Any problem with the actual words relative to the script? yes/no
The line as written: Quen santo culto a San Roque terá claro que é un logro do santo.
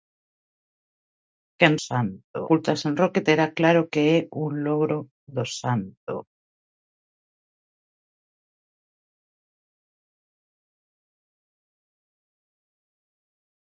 no